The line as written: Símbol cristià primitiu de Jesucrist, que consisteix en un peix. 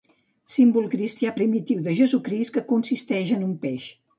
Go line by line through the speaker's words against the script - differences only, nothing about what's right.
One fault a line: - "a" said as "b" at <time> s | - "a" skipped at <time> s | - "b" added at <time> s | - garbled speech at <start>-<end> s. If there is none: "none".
none